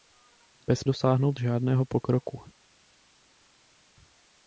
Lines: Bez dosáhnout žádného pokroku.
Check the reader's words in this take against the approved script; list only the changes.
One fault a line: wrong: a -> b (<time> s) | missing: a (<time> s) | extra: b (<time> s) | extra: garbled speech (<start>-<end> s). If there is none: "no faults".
no faults